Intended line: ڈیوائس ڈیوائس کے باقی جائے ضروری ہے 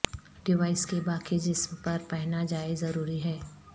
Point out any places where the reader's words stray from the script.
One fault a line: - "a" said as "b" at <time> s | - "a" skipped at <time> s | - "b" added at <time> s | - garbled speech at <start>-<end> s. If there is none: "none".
- "ڈیوائس" skipped at 0.8 s
- "جسم پر پہنا" added at 1.4 s